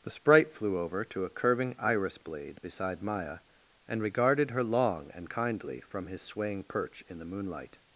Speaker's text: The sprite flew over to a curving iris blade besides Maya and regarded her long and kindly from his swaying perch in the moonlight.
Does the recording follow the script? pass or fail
fail